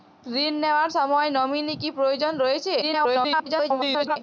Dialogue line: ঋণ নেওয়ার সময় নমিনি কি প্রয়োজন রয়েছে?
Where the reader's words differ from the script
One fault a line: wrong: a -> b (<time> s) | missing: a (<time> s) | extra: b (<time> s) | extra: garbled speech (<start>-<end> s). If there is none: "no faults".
extra: garbled speech (2.8-4.2 s)